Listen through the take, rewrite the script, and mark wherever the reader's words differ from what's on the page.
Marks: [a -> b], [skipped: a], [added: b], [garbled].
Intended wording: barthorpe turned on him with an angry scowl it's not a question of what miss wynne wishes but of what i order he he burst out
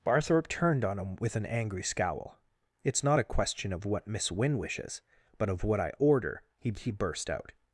barthorpe turned on him with an angry scowl it's not a question of what miss wynne wishes but of what i order he he burst out